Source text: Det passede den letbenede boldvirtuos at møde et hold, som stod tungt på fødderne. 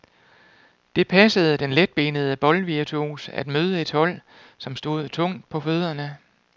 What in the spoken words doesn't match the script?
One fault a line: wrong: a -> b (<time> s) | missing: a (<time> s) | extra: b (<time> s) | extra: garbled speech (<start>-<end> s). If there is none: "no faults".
no faults